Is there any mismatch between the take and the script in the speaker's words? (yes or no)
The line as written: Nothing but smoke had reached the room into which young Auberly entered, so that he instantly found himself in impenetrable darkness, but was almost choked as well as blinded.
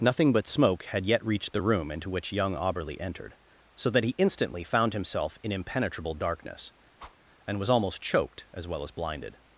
yes